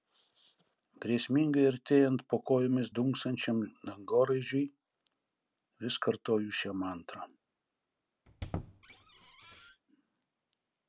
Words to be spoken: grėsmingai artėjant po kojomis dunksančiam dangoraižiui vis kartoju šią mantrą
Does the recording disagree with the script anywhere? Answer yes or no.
no